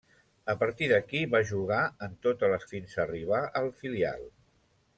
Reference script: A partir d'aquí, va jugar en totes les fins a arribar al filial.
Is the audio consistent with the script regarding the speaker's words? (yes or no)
yes